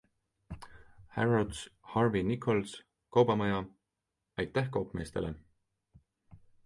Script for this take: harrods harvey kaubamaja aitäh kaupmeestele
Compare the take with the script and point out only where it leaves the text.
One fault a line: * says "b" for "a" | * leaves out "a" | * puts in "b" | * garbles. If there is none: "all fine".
* puts in "nichols"